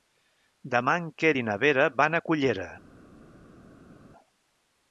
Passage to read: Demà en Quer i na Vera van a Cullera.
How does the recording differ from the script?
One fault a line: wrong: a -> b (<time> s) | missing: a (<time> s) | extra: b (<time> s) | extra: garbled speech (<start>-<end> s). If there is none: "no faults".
no faults